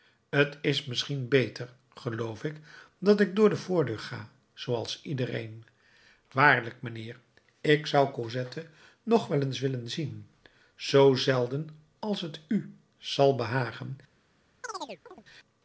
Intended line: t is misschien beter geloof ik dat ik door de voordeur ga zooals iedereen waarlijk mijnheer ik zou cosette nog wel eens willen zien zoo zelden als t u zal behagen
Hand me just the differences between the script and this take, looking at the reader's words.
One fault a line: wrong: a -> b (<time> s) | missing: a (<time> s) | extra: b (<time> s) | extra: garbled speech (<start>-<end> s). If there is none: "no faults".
no faults